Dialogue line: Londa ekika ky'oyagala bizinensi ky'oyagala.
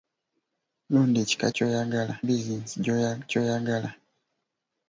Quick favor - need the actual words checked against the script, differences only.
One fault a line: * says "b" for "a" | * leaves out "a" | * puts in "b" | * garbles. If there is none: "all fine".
all fine